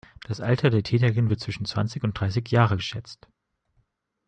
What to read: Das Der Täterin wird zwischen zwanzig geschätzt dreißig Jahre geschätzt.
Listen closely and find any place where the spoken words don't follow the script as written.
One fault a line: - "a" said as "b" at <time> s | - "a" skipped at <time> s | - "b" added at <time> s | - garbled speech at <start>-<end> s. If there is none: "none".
- "Alter" added at 0.4 s
- "geschätzt" said as "und" at 2.0 s